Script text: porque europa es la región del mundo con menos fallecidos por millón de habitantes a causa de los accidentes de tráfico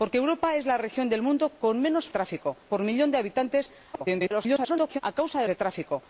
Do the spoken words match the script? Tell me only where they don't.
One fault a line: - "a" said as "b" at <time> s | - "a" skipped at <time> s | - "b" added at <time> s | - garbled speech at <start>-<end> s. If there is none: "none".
- "fallecidos" said as "tráfico" at 2.1 s
- garbled speech at 3.9-5.0 s
- "los accidentes" skipped at 5.5 s